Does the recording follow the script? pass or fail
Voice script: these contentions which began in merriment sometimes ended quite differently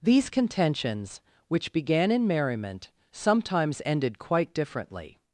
pass